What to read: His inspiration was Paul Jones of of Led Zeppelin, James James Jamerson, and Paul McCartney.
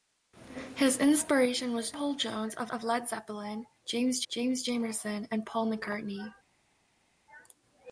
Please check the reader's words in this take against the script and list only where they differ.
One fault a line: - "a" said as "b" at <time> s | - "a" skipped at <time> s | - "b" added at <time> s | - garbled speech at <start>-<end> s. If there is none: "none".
none